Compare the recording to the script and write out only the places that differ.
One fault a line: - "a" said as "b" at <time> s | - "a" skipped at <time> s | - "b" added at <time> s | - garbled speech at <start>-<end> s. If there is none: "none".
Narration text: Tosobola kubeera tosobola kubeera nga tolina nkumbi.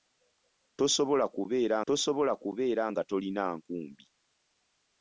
none